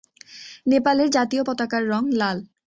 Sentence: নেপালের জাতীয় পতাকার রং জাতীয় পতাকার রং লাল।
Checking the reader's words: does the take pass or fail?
fail